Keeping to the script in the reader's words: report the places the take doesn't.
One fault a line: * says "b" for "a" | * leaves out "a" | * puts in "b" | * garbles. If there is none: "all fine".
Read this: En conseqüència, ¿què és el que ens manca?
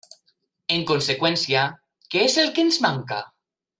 all fine